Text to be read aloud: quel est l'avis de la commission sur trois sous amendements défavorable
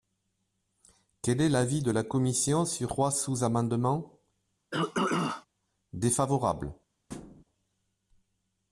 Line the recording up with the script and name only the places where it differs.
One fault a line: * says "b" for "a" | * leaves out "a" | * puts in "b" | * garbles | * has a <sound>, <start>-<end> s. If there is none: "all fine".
* has a throat clearing, 4.7-5.5 s
* has a thud, 7.1-7.4 s